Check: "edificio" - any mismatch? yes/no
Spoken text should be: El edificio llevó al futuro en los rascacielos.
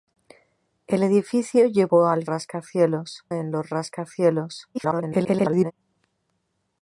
no